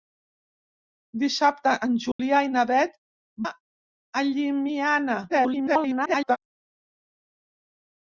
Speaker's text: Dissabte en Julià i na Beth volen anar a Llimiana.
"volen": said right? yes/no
no